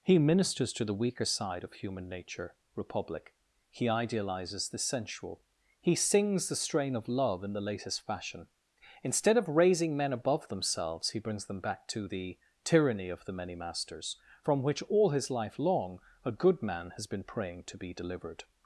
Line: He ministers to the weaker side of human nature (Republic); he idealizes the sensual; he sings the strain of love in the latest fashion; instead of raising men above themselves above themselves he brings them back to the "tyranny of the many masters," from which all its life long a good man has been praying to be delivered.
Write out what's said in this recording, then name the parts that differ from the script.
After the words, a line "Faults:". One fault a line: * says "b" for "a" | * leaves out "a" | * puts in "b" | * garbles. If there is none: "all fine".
He ministers to the weaker side of human nature (Republic); he idealizes the sensual; he sings the strain of love in the latest fashion; instead of raising men above themselves he brings them back to the "tyranny of the many masters," from which all his life long a good man has been praying to be delivered.
Faults:
* leaves out "above themselves"
* says "his" for "its"